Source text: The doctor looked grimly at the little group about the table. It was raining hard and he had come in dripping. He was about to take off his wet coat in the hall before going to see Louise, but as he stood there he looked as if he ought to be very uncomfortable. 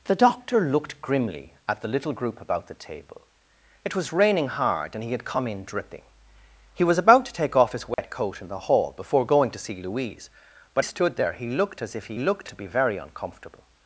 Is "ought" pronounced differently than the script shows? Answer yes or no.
yes